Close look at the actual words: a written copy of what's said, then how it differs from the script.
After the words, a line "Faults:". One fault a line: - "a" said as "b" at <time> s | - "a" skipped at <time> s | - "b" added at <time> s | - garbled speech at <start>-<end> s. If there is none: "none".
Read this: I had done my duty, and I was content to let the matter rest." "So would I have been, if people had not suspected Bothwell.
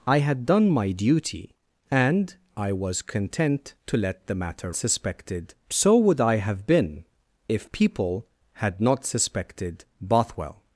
I had done my duty, and I was content to let the matter suspected." "So would I have been, if people had not suspected Bothwell.
Faults:
- "rest" said as "suspected" at 4.7 s